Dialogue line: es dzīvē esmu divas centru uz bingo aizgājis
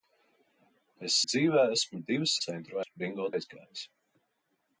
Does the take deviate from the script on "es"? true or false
false